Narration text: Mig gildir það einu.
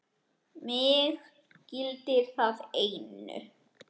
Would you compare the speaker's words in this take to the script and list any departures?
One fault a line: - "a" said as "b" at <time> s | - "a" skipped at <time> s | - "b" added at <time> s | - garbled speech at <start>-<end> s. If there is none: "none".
none